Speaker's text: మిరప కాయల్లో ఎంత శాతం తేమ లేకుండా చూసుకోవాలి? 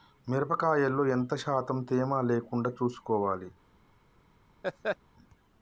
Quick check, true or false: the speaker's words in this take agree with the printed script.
true